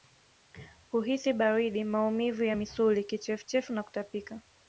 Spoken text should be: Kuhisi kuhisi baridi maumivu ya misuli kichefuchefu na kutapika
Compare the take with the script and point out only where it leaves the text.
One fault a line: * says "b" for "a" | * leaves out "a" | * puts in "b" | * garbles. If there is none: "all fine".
* leaves out "kuhisi"